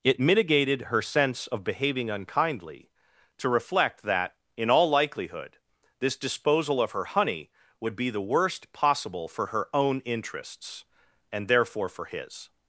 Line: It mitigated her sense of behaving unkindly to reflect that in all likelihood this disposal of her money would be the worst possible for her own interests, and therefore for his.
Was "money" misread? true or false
true